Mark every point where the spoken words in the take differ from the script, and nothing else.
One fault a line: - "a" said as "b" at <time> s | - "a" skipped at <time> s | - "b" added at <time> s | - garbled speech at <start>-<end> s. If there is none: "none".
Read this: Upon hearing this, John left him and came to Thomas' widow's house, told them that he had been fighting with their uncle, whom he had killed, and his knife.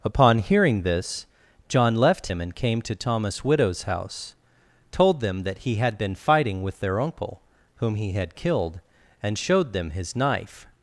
- "showed them" added at 9.4 s